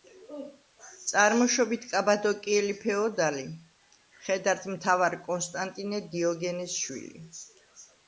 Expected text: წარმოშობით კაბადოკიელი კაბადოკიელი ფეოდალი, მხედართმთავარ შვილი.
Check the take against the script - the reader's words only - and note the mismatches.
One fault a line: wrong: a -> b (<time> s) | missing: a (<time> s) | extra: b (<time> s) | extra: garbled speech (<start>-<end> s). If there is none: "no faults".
missing: კაბადოკიელი (2.7 s)
extra: კონსტანტინე დიოგენეს (5.3 s)